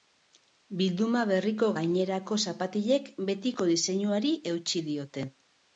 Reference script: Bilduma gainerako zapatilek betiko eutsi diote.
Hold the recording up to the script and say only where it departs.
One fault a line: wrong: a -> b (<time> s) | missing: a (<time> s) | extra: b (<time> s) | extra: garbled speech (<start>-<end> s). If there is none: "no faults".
extra: berriko (1.3 s)
extra: diseinuari (3.7 s)